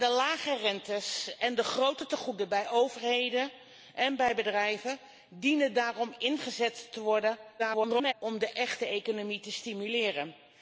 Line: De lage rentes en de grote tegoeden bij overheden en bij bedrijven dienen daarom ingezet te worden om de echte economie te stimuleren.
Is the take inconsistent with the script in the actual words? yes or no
yes